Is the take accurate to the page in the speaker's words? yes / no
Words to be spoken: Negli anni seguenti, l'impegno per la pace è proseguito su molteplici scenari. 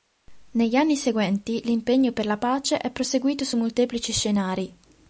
yes